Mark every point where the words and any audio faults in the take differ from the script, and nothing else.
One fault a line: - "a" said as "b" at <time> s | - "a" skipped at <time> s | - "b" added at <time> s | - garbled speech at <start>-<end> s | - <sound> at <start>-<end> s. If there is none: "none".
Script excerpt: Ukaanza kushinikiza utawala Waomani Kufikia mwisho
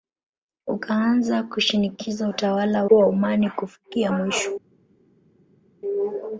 none